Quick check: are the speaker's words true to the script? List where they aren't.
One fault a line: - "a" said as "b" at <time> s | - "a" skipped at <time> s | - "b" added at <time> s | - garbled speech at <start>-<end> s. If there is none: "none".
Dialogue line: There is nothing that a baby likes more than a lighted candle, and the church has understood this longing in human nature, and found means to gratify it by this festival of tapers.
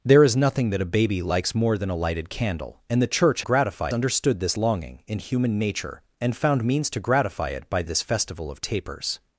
- "has" said as "gratify" at 3.4 s